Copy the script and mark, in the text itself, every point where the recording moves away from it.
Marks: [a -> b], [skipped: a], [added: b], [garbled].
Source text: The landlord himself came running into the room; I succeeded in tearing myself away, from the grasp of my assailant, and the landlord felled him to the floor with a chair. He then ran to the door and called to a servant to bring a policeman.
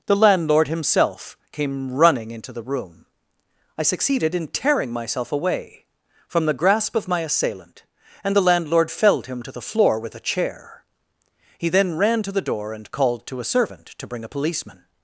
The landlord himself came running into the room; I succeeded in tearing myself away, from the grasp of my assailant, and the landlord felled him to the floor with a chair. He then ran to the door and called to a servant to bring a policeman.